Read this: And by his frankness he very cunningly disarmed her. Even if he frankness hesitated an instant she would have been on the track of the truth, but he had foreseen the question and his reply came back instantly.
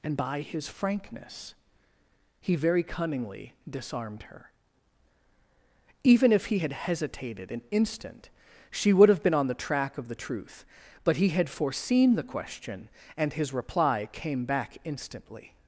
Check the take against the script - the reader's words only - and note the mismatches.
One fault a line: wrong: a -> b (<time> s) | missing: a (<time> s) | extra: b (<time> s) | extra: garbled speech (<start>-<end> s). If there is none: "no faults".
wrong: frankness -> had (6.6 s)